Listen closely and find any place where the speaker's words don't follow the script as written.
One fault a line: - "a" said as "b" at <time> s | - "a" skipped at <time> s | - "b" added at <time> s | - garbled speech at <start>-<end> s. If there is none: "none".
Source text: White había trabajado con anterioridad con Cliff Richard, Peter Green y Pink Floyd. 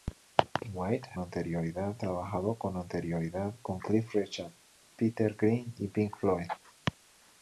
- "había" said as "anterioridad" at 1.2 s